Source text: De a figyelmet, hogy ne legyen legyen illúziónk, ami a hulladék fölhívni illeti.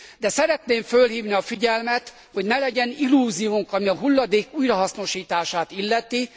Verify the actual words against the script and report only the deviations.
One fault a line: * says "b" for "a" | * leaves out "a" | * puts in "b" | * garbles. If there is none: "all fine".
* puts in "szeretném fölhívni"
* leaves out "legyen"
* says "újrahasznosítását" for "fölhívni"